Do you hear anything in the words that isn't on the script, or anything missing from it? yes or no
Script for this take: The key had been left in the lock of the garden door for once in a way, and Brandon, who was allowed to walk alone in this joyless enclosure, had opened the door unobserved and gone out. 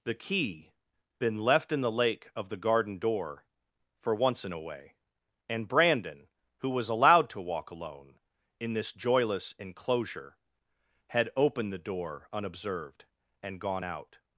yes